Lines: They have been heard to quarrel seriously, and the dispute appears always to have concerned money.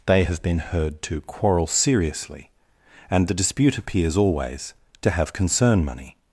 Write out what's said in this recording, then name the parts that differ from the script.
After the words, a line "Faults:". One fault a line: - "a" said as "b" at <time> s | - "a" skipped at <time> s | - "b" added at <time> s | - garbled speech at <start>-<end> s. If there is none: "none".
They have been heard to quarrel seriously, and the dispute appears always to have concern money.
Faults:
- "concerned" said as "concern" at 5.3 s